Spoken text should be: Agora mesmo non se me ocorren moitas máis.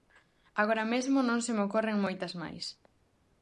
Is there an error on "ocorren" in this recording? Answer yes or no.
no